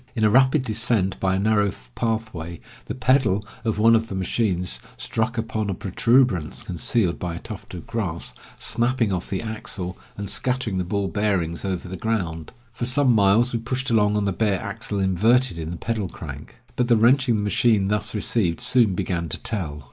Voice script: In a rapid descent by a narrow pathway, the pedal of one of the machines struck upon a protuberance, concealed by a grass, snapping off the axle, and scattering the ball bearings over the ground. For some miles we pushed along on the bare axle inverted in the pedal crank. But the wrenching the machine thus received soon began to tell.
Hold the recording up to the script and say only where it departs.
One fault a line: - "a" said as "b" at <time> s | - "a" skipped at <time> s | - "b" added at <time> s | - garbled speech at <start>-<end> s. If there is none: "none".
- "tuft of" added at 7.4 s